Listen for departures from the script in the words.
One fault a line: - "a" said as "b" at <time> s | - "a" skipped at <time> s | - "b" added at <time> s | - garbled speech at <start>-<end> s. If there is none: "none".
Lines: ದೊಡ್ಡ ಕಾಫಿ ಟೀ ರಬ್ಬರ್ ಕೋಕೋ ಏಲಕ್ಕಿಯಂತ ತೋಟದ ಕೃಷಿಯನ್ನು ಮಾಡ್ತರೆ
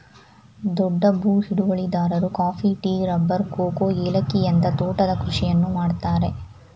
- "ಭೂ ಹಿಡುವಳಿದಾರರು" added at 1.2 s